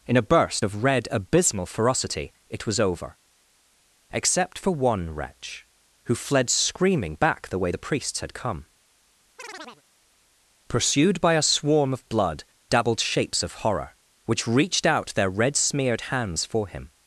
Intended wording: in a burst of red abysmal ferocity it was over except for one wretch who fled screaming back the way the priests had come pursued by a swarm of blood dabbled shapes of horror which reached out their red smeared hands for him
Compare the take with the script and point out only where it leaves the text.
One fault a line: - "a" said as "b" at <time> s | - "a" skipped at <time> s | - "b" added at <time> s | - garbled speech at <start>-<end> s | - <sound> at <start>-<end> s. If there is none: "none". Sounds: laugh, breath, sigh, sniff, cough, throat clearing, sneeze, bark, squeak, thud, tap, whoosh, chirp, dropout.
- chirp at 9.4-9.8 s